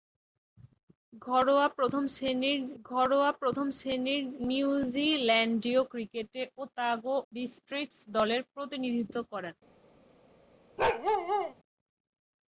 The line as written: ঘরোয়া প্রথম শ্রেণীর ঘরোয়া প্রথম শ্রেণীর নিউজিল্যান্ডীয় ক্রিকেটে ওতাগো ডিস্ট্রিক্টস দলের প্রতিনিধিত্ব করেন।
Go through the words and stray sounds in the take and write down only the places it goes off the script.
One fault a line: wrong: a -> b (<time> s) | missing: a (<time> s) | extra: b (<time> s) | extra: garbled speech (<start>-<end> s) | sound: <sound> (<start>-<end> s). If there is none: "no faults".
sound: bark (10.8-11.5 s)